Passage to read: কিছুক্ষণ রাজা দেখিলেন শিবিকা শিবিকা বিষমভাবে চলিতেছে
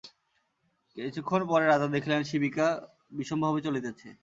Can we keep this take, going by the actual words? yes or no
no